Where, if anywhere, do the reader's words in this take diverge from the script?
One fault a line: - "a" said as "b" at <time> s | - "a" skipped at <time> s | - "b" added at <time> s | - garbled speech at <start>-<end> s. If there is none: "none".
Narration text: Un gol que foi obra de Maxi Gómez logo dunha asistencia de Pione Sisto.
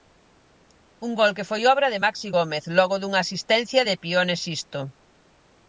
none